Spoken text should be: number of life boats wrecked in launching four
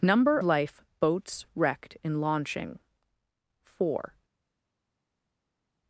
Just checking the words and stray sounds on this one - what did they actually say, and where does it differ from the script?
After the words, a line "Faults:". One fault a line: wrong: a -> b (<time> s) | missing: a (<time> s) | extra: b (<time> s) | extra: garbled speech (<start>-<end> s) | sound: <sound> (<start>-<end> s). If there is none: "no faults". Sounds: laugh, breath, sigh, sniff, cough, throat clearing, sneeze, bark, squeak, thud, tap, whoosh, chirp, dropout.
number life boats wrecked in launching four
Faults:
missing: of (0.4 s)